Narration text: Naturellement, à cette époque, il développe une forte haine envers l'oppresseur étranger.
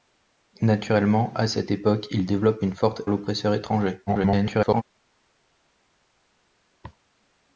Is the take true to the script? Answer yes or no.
no